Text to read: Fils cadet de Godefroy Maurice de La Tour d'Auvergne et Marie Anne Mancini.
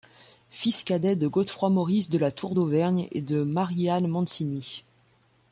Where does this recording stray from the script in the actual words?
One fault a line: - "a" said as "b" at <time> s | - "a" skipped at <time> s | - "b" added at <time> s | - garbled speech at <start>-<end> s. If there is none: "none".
- "de" added at 3.2 s